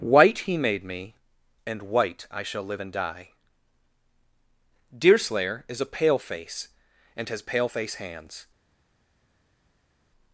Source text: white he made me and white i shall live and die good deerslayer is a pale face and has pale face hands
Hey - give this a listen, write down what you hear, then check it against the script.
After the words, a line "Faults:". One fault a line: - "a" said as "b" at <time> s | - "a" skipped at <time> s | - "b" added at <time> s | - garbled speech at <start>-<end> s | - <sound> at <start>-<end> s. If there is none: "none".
white he made me and white i shall live and die deerslayer is a pale face and has pale face hands
Faults:
- "good" skipped at 3.3 s